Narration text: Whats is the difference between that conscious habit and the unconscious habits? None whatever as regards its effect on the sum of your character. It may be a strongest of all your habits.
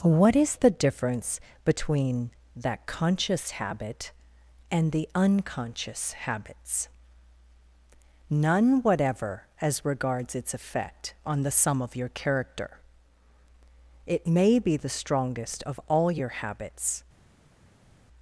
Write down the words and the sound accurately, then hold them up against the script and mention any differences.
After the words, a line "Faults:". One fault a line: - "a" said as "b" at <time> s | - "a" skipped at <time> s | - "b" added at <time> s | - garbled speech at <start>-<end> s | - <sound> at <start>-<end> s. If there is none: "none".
What is the difference between that conscious habit and the unconscious habits? None whatever as regards its effect on the sum of your character. It may be the strongest of all your habits.
Faults:
- "Whats" said as "What" at 0.0 s
- "a" said as "the" at 14.8 s